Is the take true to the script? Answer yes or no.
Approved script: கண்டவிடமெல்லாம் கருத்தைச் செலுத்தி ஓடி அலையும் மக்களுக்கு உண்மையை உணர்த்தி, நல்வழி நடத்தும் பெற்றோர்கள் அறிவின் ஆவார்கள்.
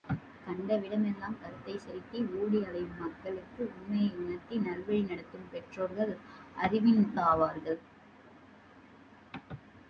yes